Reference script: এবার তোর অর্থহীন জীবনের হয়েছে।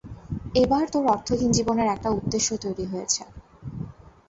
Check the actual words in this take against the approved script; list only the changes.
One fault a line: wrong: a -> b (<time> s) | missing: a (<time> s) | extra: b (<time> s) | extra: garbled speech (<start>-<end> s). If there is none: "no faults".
extra: একটা উদ্দেশ্য তৈরি (1.9 s)